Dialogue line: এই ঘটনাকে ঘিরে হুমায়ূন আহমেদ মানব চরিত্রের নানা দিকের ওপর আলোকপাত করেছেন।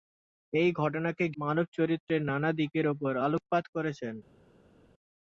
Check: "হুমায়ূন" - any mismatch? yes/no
yes